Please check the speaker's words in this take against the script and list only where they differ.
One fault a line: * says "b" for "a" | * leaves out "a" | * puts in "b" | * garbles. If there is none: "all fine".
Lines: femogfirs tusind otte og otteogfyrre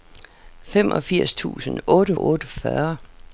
all fine